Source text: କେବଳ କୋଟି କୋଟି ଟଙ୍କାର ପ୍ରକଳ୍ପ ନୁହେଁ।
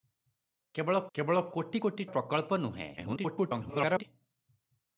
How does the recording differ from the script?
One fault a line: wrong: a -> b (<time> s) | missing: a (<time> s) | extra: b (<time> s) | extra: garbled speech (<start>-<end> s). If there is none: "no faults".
extra: କେବଳ (1.1 s)
missing: ଟଙ୍କାର (2.1 s)
extra: garbled speech (3.0-4.0 s)